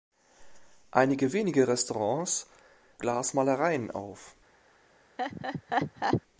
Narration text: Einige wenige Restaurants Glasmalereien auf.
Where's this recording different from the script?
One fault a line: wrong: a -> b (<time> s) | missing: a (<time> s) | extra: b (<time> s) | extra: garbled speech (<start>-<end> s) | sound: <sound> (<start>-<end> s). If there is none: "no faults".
sound: laugh (5.2-6.2 s)